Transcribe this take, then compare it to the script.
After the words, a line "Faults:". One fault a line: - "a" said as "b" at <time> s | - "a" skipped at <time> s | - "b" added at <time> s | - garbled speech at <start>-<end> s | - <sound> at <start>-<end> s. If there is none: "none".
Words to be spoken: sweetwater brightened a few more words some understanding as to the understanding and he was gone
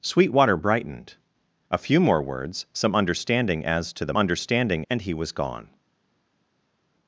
sweetwater brightened a few more words some understanding as to the understanding and he was gone
Faults:
none